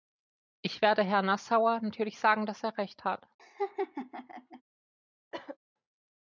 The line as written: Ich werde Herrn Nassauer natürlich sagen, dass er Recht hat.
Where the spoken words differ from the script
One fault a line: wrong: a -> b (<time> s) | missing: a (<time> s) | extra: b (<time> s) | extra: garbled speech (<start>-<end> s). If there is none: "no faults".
no faults